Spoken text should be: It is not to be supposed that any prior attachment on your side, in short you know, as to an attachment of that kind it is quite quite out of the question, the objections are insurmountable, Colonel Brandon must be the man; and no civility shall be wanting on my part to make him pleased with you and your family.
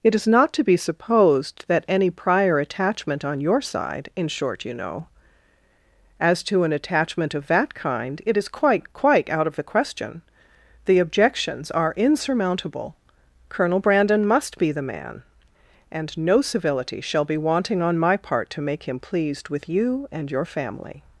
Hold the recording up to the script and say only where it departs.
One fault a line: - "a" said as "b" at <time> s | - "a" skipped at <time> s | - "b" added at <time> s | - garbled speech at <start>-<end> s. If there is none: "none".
none